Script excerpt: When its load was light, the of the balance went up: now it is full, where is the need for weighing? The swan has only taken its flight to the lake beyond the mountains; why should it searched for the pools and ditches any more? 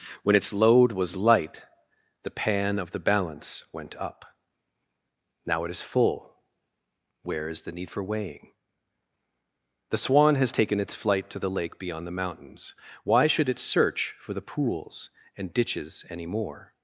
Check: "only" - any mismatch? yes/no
yes